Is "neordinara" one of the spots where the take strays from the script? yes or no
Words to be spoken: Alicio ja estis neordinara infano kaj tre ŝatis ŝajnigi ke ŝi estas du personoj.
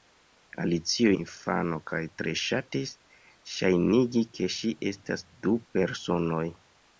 yes